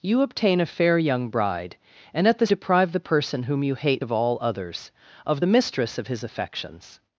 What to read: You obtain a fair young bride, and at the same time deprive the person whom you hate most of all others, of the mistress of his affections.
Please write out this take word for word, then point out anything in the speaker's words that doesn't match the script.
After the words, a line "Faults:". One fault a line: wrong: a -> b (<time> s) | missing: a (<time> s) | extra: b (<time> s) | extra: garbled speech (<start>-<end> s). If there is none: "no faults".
You obtain a fair young bride, and at the deprive the person whom you hate of all others, of the mistress of his affections.
Faults:
missing: same time (2.5 s)
missing: most (4.0 s)